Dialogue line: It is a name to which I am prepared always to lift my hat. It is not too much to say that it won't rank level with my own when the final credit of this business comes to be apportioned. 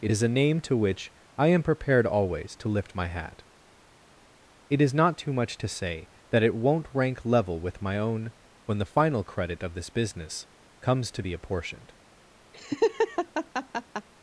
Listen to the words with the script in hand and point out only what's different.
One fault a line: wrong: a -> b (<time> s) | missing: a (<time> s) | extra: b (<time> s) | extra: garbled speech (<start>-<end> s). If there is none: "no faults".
no faults